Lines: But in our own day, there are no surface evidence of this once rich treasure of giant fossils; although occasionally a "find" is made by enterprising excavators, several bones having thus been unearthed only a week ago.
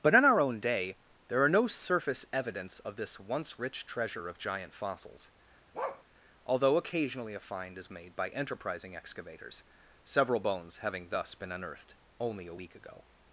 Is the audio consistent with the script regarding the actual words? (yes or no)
yes